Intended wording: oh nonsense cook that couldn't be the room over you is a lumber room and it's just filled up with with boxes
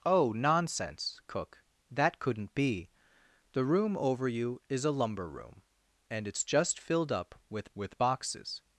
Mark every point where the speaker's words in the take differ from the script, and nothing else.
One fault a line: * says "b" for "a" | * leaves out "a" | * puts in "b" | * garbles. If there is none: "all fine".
all fine